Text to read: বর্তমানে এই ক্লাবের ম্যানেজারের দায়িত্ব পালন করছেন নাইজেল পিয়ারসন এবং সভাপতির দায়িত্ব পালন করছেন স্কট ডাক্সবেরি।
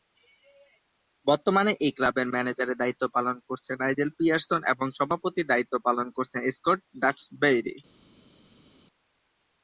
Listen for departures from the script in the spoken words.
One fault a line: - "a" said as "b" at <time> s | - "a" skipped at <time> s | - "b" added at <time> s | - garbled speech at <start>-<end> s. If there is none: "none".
none